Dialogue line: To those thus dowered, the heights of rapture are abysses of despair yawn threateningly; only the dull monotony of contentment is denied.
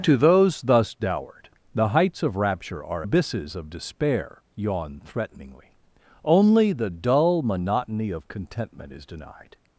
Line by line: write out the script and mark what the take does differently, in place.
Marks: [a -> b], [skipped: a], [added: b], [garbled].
To those thus dowered, the heights of rapture are abysses of despair yawn threateningly; only the dull monotony of contentment is denied.